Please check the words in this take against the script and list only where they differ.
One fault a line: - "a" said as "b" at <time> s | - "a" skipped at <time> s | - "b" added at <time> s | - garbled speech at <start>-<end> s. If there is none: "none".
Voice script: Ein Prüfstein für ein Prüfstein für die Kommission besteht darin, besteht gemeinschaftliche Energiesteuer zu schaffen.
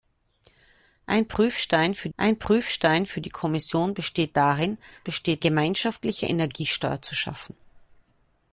none